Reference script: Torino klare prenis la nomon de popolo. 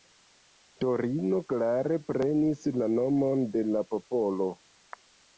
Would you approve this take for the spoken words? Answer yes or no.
no